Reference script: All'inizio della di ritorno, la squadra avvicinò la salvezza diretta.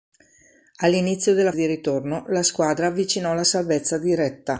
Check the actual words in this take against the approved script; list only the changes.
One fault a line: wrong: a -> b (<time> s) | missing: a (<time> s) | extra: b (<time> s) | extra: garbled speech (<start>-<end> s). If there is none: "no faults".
no faults